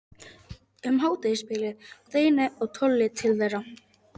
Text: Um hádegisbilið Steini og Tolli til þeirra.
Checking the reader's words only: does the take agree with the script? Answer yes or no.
yes